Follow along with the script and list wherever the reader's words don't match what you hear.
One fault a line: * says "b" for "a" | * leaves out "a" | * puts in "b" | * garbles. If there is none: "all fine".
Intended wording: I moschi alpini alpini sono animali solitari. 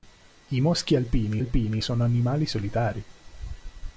all fine